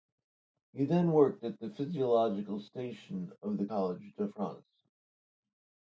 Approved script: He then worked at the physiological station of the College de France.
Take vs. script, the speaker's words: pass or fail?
pass